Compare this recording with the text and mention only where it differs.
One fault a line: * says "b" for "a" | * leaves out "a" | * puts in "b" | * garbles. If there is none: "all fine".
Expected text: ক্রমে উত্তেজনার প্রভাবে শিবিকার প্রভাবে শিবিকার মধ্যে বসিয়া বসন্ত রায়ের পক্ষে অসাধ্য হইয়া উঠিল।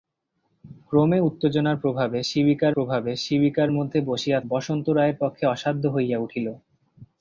all fine